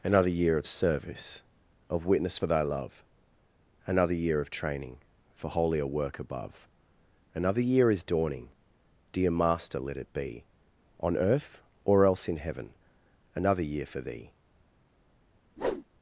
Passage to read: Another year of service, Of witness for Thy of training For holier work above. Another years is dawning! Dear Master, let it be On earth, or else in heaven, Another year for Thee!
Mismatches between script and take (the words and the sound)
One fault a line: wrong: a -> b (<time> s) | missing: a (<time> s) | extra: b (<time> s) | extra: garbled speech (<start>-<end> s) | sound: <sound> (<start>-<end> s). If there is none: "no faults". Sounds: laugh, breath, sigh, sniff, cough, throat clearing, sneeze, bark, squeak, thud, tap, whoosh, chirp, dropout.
extra: love Another year (2.6 s)
wrong: years -> year (7.6 s)
sound: whoosh (15.6-15.9 s)